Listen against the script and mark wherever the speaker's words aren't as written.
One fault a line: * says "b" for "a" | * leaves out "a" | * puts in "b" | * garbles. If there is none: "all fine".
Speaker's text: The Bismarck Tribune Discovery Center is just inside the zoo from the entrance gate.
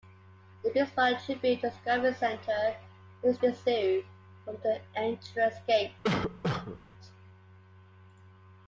* leaves out "just inside"